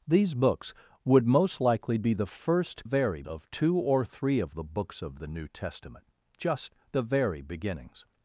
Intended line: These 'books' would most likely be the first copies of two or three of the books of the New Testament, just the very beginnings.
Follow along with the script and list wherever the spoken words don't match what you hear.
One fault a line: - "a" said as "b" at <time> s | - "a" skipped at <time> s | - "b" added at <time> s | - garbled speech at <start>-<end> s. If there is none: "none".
- "copies" said as "very" at 2.8 s